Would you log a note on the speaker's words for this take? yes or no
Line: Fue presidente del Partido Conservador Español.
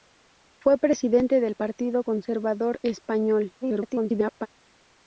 yes